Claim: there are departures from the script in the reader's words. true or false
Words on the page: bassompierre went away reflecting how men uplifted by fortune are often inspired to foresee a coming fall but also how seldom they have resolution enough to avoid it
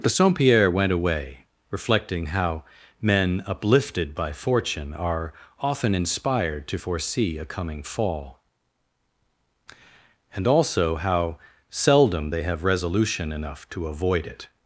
true